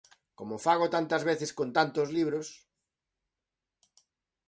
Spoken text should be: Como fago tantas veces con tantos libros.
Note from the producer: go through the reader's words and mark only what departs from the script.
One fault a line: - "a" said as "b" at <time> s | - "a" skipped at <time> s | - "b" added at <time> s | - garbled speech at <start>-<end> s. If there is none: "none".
none